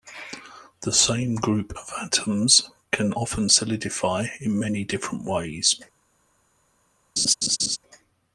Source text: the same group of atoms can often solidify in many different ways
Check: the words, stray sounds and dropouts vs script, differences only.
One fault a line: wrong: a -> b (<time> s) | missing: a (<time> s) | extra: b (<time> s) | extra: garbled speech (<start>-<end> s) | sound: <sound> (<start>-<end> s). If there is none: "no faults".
sound: laugh (7.2-7.8 s)